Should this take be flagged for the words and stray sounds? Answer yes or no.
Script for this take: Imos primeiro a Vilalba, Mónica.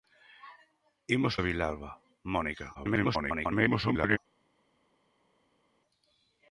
yes